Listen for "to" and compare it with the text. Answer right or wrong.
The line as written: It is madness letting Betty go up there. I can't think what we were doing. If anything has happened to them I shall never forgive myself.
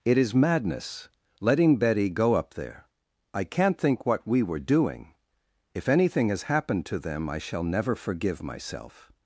right